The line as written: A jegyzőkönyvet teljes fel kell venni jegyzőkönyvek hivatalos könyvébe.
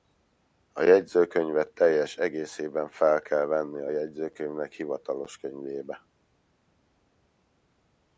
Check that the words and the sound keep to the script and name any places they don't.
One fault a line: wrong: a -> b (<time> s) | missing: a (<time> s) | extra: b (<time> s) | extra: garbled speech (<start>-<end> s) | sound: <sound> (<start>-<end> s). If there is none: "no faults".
extra: egészében (2.2 s)
extra: a (3.8 s)